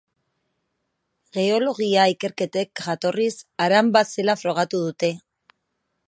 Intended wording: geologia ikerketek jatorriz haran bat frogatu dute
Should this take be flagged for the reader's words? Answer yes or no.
yes